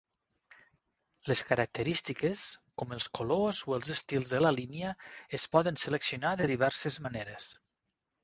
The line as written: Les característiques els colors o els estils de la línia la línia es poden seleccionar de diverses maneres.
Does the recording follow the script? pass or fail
fail